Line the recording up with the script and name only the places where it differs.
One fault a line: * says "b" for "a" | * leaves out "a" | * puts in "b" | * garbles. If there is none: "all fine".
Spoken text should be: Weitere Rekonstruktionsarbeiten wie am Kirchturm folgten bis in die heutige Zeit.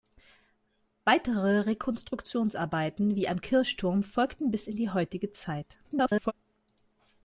* garbles